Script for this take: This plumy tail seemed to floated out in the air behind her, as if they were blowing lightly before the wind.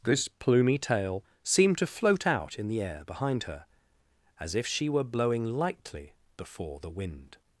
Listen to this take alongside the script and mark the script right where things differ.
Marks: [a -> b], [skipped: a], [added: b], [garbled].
This plumy tail seemed to [floated -> float] out in the air behind her, as if [they -> she] were blowing lightly before the wind.